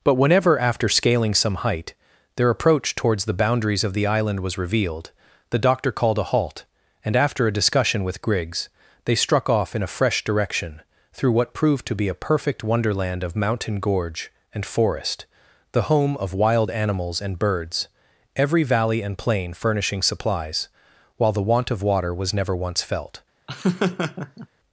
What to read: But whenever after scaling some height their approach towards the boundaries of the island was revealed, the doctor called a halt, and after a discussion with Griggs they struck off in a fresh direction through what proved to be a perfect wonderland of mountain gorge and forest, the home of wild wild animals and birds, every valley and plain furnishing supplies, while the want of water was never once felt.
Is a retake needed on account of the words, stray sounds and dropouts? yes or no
yes